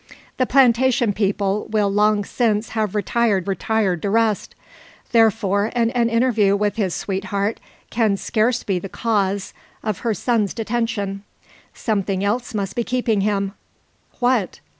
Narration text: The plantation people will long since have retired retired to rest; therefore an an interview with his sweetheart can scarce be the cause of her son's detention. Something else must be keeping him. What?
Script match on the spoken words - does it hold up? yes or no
yes